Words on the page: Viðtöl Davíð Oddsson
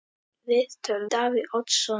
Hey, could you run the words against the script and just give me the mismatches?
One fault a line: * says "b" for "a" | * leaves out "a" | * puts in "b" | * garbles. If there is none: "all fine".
all fine